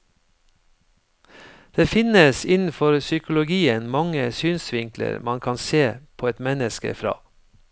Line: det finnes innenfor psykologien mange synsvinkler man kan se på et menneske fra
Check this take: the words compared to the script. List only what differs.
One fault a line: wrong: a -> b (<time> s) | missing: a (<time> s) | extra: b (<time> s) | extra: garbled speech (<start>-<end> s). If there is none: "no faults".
no faults